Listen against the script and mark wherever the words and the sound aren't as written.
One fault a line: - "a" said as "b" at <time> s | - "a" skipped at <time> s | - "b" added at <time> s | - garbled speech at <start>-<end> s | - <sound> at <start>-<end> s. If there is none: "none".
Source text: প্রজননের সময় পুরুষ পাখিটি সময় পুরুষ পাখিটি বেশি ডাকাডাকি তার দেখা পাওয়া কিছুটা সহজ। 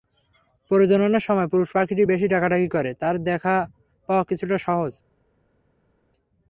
- "সময় পুরুষ পাখিটি" skipped at 2.0 s
- "করে" added at 2.7 s